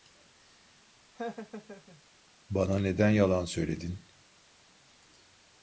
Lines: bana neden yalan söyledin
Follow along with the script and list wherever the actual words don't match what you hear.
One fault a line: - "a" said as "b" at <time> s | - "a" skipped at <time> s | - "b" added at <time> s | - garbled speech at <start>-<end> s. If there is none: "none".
none